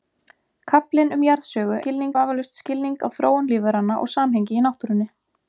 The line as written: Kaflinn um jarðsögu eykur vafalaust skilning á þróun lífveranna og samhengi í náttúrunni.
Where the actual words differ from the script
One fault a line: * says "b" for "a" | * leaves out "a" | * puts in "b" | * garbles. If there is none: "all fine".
* says "skilning" for "eykur"